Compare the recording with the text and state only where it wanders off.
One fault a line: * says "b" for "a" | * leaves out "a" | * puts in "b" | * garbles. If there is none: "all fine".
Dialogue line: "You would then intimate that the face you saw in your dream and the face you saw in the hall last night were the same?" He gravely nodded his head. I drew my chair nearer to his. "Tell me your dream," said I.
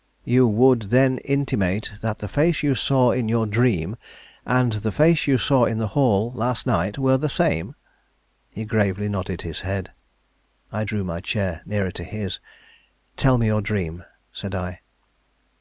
all fine